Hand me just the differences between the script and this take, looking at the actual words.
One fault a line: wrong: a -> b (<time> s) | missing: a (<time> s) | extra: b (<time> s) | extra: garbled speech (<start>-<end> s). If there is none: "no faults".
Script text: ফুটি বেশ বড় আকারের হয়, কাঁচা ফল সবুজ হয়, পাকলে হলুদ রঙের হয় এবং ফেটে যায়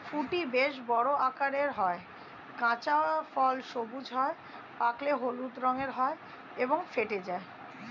no faults